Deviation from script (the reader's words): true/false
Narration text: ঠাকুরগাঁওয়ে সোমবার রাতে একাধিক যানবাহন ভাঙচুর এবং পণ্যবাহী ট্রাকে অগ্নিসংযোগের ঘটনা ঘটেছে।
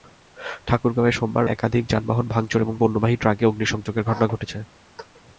true